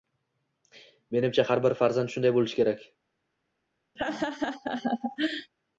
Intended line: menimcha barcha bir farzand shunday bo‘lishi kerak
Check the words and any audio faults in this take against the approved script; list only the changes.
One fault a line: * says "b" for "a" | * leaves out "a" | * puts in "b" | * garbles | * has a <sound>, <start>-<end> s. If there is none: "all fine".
* says "har" for "barcha"
* has a laugh, 4.0-5.5 s